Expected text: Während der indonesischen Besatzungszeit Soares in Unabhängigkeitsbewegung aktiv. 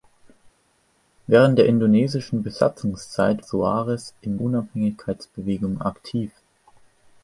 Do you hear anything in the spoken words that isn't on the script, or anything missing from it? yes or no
no